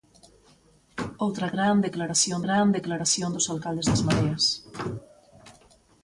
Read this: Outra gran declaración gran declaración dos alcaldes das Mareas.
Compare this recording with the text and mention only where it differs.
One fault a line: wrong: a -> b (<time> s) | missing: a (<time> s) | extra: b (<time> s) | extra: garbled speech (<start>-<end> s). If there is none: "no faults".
no faults